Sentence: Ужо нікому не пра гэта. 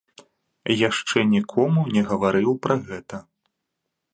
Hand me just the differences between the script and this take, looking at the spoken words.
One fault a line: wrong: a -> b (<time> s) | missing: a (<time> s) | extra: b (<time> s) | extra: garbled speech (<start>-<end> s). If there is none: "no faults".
wrong: Ужо -> Яшчэ (0.9 s)
extra: гаварыў (2.1 s)